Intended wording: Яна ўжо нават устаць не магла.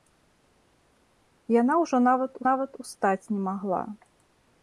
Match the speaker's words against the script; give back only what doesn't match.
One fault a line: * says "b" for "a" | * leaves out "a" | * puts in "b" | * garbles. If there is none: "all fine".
* puts in "нават"